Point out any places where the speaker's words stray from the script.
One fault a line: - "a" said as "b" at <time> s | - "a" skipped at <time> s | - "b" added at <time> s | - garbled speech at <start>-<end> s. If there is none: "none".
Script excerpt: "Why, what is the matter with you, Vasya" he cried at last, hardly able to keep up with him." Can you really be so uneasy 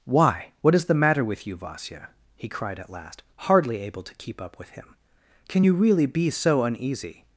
none